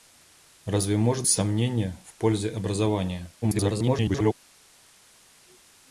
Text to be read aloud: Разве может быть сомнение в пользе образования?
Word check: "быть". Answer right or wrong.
wrong